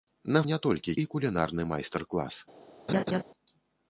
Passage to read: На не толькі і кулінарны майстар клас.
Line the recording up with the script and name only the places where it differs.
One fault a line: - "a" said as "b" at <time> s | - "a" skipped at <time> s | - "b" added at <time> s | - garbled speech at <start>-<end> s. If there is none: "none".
none